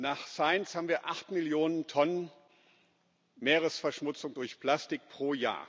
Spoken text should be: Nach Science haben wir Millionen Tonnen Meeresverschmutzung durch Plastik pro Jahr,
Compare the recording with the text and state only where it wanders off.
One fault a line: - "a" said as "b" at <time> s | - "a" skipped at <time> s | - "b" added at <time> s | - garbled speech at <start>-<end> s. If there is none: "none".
- "acht" added at 1.1 s